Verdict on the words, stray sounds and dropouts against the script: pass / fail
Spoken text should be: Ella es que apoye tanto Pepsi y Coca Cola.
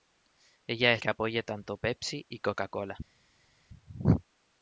pass